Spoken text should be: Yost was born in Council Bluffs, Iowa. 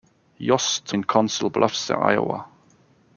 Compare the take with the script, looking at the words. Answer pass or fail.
fail